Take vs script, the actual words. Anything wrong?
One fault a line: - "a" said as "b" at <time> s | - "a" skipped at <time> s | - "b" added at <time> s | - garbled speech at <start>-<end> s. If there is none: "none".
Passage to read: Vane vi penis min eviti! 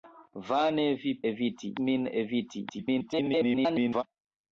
- "penis" said as "eviti" at 1.3 s
- garbled speech at 2.7-4.0 s